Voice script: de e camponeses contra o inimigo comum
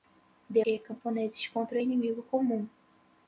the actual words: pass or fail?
pass